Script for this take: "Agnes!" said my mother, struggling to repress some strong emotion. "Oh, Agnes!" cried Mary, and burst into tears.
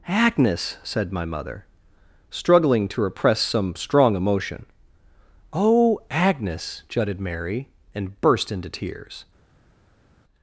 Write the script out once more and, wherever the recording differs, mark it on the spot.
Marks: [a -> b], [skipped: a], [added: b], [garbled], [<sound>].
"Agnes!" said my mother, struggling to repress some strong emotion. "Oh, Agnes!" [cried -> jutted] Mary, and burst into tears.